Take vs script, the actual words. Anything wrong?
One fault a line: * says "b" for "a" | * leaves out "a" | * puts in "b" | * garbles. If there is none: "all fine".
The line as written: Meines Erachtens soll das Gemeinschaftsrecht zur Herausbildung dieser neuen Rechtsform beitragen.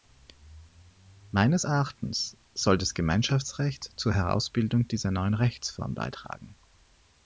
all fine